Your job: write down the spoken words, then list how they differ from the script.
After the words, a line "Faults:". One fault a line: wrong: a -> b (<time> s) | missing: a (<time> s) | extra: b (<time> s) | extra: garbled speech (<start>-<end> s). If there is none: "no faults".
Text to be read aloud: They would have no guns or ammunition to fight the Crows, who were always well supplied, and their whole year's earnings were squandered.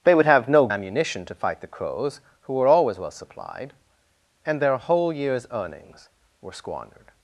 They would have no ammunition to fight the Crows, who were always well supplied, and their whole year's earnings were squandered.
Faults:
missing: guns or (0.7 s)